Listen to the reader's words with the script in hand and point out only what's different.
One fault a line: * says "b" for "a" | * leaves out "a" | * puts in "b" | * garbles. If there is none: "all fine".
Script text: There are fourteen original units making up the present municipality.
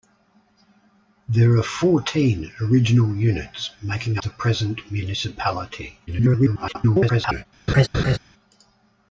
* leaves out "up"
* garbles